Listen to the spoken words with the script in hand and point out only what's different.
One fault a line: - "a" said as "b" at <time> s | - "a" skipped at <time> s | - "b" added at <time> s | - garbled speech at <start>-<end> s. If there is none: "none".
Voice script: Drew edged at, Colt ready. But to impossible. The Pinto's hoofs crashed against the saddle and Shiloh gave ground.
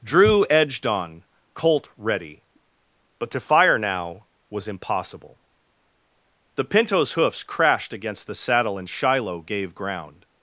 - "at" said as "on" at 0.9 s
- "fire now was" added at 3.4 s